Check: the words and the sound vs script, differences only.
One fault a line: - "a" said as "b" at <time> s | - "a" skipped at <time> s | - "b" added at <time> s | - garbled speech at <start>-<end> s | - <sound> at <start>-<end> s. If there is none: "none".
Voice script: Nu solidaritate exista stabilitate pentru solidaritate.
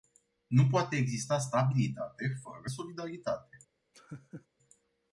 - "solidaritate" said as "poate" at 0.7 s
- "pentru" said as "fără" at 2.4 s
- laugh at 3.9-4.5 s